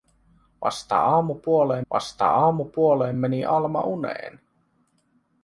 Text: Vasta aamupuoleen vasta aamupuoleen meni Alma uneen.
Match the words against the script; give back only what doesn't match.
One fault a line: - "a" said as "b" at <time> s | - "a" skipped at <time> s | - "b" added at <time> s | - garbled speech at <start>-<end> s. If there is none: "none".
none